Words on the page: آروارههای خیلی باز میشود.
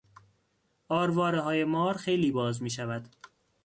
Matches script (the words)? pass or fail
fail